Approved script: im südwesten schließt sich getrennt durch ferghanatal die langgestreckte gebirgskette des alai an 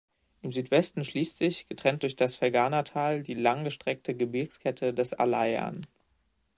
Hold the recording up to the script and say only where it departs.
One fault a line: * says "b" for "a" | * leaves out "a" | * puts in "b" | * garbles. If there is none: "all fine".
* puts in "das"